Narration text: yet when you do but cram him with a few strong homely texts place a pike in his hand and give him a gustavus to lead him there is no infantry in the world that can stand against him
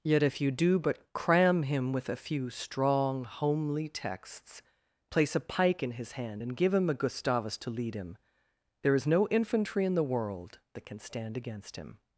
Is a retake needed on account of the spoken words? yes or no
yes